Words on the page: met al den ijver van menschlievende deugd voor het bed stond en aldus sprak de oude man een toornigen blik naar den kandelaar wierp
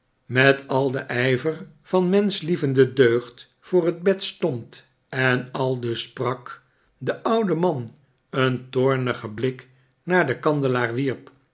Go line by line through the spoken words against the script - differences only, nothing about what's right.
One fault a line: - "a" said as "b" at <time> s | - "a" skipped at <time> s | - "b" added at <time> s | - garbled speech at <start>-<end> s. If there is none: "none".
none